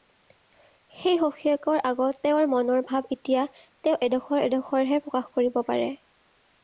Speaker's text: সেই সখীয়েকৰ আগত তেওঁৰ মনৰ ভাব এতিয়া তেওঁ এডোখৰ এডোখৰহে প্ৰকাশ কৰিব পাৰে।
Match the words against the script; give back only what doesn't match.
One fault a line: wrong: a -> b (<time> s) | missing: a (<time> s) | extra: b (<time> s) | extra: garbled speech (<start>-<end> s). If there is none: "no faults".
no faults